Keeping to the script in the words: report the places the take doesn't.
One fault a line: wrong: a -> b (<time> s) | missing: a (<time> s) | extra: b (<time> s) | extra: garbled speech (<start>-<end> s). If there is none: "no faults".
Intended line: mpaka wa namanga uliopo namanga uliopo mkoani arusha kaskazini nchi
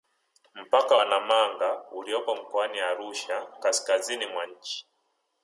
missing: namanga uliopo (2.4 s)
extra: mwa (4.3 s)